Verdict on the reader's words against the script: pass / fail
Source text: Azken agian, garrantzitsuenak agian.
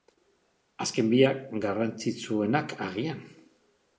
fail